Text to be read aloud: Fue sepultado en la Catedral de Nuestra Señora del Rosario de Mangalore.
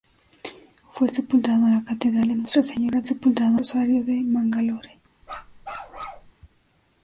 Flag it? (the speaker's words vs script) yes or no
yes